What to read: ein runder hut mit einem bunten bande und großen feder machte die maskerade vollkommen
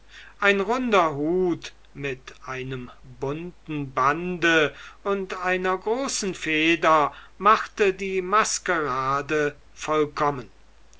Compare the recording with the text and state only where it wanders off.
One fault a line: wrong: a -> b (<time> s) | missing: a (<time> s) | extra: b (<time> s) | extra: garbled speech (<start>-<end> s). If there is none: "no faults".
extra: einer (5.5 s)